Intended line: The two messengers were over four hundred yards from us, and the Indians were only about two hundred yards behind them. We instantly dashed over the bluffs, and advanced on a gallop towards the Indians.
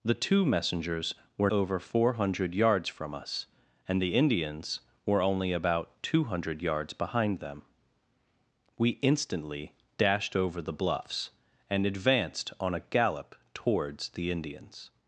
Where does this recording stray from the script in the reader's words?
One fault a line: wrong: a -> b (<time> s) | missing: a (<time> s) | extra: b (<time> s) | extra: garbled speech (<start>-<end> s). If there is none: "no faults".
no faults